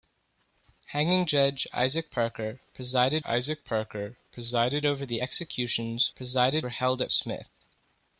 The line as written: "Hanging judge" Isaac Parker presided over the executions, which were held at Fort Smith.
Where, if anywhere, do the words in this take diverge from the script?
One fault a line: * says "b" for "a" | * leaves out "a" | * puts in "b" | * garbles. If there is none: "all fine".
* puts in "Isaac Parker presided"
* says "presided" for "which"
* leaves out "Fort"